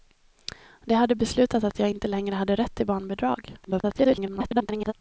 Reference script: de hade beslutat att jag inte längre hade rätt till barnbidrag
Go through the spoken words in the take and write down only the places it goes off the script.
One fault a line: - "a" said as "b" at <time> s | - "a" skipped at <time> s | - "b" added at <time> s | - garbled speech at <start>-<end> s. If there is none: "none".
- garbled speech at 3.6-4.9 s